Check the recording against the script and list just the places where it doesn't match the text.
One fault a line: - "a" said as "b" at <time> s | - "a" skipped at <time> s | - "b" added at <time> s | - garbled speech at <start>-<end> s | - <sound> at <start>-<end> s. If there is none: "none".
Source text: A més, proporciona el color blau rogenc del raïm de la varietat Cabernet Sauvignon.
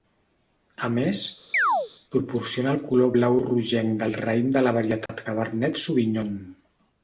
- chirp at 1.5-1.9 s
- dropout at 5.1-5.1 s